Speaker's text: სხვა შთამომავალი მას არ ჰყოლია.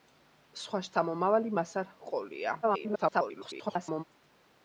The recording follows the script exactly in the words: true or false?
false